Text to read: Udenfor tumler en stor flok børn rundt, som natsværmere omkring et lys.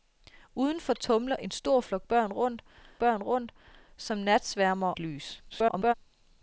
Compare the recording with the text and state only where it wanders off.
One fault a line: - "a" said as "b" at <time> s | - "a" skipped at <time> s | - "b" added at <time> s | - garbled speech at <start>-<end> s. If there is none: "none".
- "børn rundt" added at 3.0 s
- "omkring" skipped at 4.9 s
- garbled speech at 5.5-5.9 s